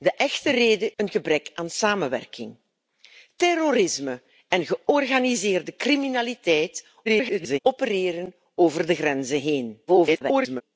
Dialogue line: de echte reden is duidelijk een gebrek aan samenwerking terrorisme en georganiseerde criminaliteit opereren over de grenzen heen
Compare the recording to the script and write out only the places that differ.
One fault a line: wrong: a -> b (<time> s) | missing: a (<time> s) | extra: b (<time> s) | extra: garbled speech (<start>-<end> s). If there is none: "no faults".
missing: is duidelijk (0.9 s)
extra: garbled speech (7.0-7.6 s)
extra: garbled speech (9.9-10.6 s)